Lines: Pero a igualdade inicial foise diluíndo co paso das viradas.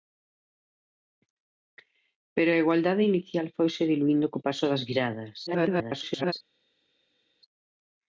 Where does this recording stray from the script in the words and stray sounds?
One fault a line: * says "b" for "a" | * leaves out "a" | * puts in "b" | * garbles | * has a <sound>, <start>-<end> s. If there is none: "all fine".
* garbles